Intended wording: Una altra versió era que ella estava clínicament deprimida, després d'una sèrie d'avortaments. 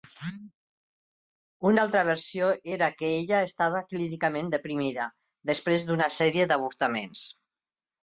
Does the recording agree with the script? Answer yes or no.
yes